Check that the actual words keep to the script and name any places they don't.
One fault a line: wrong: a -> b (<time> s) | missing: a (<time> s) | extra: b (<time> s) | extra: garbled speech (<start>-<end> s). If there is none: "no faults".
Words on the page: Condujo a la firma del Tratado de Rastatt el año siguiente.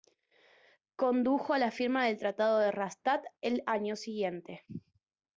no faults